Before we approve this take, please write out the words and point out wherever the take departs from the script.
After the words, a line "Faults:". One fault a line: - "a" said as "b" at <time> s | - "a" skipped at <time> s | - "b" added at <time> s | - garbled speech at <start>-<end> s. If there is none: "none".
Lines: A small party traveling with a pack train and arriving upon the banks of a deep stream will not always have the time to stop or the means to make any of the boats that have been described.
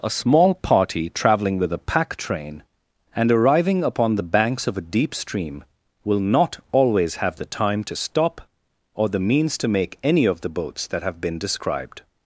A small party traveling with a pack train and arriving upon the banks of a deep stream will not always have the time to stop or the means to make any of the boats that have been described.
Faults:
none